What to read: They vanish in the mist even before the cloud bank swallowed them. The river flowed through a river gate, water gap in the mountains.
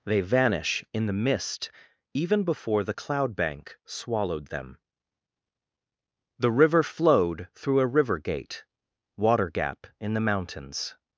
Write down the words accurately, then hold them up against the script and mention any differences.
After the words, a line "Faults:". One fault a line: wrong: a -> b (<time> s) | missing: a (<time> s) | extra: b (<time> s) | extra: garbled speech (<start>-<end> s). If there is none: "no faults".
They vanish in the mist even before the cloud bank swallowed them. The river flowed through a river gate, water gap in the mountains.
Faults:
no faults